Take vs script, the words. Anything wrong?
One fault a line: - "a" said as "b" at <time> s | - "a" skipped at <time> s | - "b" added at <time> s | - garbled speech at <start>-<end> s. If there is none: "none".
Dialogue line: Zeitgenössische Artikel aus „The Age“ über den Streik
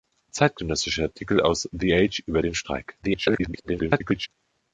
- garbled speech at 3.0-4.3 s